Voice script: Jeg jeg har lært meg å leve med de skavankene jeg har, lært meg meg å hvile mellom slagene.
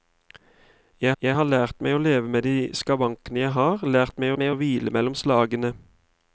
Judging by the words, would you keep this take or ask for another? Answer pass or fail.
pass